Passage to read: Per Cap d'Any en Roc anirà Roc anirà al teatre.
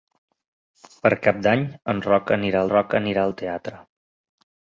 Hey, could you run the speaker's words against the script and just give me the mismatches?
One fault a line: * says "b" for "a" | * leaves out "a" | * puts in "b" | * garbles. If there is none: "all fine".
all fine